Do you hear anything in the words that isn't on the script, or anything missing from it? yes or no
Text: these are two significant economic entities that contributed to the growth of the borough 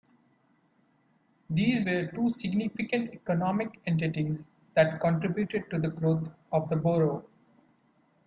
yes